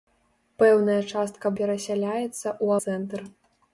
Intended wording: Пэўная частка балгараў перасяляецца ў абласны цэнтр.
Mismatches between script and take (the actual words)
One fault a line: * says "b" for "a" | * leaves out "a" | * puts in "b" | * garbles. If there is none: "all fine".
* leaves out "балгараў"
* leaves out "абласны"